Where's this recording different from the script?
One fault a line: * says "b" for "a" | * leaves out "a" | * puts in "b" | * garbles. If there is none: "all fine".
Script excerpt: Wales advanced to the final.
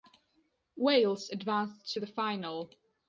all fine